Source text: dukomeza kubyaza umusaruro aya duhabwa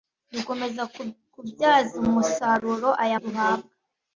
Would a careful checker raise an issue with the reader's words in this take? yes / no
no